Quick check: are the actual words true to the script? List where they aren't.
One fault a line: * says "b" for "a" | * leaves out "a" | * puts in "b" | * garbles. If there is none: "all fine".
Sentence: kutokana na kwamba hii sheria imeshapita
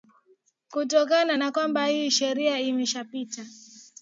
all fine